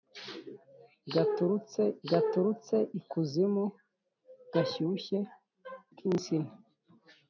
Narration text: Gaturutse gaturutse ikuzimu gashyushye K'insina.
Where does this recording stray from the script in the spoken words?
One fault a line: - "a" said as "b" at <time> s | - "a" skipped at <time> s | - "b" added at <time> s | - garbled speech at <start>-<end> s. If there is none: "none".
none